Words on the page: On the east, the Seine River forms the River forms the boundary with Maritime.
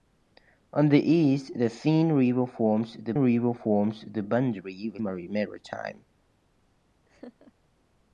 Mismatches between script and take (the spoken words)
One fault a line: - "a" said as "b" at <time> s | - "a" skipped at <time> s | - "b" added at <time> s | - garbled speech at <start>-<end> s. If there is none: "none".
none